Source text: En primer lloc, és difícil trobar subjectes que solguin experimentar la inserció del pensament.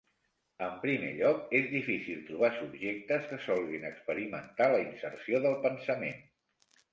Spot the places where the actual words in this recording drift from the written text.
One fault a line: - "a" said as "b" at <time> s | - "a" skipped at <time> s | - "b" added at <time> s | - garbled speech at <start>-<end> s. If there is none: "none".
none